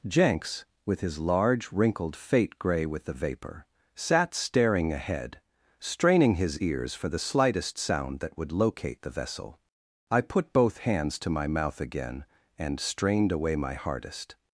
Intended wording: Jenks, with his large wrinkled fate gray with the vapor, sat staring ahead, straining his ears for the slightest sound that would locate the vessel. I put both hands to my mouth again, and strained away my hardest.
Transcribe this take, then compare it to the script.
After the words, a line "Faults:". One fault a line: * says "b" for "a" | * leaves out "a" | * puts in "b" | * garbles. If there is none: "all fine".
Jenks, with his large wrinkled fate gray with the vapor, sat staring ahead, straining his ears for the slightest sound that would locate the vessel. I put both hands to my mouth again, and strained away my hardest.
Faults:
all fine